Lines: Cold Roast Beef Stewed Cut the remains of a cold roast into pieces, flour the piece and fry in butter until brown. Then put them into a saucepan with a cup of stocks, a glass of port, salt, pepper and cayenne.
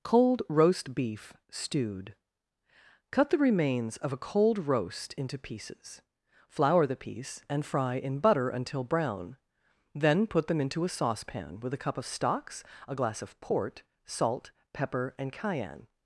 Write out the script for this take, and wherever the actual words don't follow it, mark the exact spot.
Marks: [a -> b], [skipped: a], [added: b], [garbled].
Cold Roast Beef Stewed Cut the remains of a cold roast into pieces, flour the piece and fry in butter until brown. Then put them into a saucepan with a cup of stocks, a glass of port, salt, pepper and cayenne.